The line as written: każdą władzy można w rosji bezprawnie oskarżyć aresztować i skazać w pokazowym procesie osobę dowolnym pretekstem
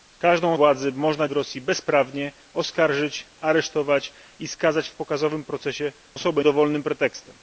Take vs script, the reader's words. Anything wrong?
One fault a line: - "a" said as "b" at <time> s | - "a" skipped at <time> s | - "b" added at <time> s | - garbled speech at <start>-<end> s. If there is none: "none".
none